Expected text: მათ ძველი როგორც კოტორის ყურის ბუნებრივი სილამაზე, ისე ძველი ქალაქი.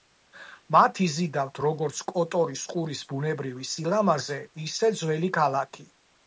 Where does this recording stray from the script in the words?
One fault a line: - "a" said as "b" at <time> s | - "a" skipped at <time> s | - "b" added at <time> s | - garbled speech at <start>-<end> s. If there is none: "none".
- "ძველი" said as "იზიდავთ" at 1.1 s